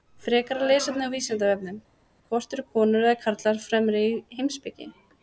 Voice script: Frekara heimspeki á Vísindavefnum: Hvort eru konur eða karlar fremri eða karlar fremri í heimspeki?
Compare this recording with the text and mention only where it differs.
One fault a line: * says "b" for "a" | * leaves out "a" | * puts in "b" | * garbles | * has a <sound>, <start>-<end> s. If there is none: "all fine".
* says "lesefni" for "heimspeki"
* leaves out "eða karlar fremri"